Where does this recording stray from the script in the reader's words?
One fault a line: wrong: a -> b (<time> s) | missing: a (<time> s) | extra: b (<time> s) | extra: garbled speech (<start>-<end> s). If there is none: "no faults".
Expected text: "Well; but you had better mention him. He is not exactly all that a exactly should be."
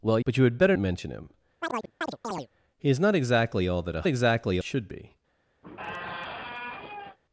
no faults